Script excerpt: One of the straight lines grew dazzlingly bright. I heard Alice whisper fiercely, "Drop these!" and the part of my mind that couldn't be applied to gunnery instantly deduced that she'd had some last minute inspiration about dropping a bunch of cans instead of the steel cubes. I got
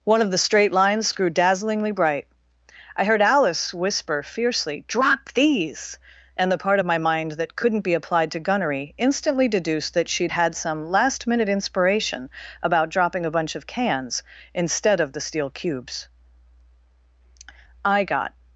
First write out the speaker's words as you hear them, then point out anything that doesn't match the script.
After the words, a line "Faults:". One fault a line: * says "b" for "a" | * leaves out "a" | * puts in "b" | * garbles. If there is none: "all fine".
One of the straight lines grew dazzlingly bright. I heard Alice whisper fiercely, "Drop these!" and the part of my mind that couldn't be applied to gunnery instantly deduced that she'd had some last minute inspiration about dropping a bunch of cans instead of the steel cubes. I got
Faults:
all fine